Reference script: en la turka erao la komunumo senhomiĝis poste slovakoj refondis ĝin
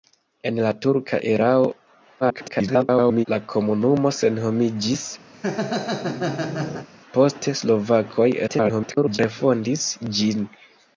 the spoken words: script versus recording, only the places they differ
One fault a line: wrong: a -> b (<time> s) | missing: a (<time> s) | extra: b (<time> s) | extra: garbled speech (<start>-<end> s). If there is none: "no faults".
extra: garbled speech (2.2-3.3 s)
extra: garbled speech (8.5-9.2 s)